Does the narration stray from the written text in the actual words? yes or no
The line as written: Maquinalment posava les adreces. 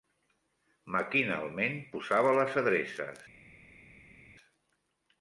no